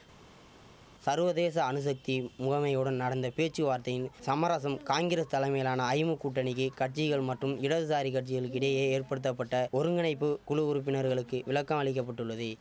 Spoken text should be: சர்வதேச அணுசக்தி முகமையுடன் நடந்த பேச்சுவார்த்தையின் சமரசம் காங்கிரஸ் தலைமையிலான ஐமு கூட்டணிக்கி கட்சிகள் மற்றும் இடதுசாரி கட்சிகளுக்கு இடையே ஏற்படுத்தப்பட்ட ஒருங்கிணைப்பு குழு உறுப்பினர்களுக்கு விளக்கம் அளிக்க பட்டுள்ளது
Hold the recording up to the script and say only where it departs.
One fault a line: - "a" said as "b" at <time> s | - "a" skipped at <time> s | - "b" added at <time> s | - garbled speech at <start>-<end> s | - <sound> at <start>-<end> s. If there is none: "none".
none